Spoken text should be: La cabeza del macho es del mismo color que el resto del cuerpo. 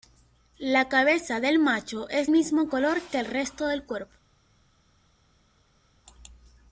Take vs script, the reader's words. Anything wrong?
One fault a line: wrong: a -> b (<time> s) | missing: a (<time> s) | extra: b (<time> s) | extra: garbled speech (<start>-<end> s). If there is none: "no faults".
missing: del (2.3 s)